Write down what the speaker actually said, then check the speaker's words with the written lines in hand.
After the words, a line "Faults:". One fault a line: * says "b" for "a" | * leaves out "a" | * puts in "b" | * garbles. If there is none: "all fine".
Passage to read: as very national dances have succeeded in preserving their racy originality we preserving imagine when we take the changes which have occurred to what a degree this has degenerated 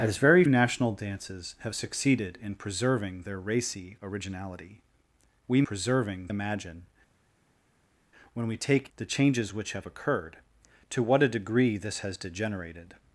as very national dances have succeeded in preserving their racy originality we preserving imagine when we take the changes which have occurred to what a degree this has degenerated
Faults:
all fine